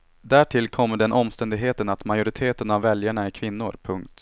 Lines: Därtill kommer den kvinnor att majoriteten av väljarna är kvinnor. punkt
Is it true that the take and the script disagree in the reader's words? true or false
true